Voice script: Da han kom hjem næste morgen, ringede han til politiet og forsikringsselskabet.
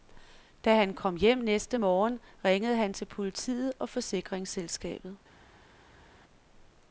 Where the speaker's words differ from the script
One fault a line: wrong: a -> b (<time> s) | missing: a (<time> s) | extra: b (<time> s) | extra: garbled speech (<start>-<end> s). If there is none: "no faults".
no faults